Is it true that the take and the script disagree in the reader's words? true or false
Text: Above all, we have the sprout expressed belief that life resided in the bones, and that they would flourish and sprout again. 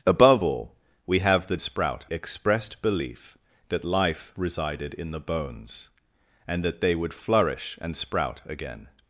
false